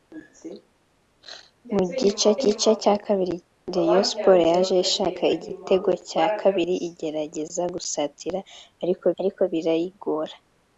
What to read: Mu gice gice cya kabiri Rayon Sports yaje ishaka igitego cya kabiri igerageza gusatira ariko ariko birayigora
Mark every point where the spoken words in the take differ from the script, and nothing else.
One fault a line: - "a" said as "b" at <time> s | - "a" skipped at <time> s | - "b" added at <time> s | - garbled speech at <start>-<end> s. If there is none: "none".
none